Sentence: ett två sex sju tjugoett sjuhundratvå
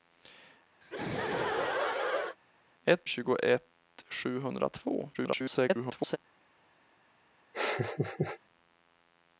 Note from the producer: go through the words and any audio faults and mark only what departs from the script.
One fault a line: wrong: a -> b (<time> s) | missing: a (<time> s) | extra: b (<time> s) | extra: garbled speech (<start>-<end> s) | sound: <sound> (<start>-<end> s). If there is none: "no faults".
sound: laugh (0.8-2.4 s)
missing: två sex sju (3.0 s)
extra: garbled speech (5.1-6.2 s)
sound: laugh (7.5-8.4 s)